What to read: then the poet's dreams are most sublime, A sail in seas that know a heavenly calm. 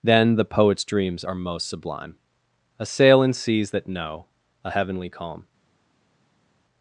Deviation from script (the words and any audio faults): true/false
false